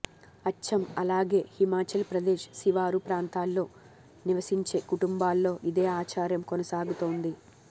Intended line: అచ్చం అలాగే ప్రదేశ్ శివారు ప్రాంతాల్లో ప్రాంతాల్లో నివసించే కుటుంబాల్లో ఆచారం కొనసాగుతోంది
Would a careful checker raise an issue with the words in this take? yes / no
yes